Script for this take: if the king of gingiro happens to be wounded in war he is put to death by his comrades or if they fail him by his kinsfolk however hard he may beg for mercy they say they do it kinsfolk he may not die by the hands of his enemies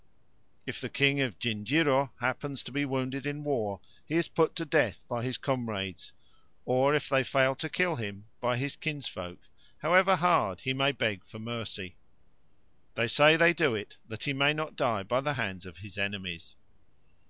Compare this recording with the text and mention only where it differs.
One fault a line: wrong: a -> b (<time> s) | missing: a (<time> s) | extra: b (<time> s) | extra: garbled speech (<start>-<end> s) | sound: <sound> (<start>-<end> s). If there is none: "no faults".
extra: to kill (7.6 s)
wrong: kinsfolk -> that (14.0 s)